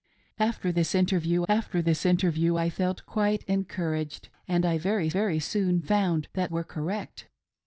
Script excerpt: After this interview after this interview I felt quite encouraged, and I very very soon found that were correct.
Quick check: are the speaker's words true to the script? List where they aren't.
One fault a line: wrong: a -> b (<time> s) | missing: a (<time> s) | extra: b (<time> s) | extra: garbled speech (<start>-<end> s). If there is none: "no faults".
no faults